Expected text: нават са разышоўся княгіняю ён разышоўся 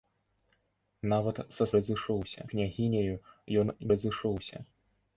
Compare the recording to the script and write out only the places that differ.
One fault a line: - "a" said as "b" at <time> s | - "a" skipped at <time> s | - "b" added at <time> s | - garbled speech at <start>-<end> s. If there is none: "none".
none